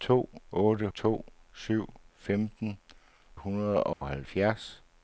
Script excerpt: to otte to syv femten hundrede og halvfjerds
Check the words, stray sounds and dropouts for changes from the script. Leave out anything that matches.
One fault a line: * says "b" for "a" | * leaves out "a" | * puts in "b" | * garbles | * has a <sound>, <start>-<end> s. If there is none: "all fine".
* has a dropout, 3.9-4.0 s